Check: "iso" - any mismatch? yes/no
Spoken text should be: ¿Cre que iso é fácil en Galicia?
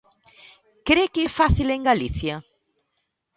yes